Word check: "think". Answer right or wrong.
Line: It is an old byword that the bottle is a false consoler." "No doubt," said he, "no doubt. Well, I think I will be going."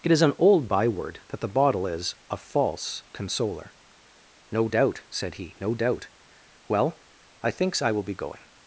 wrong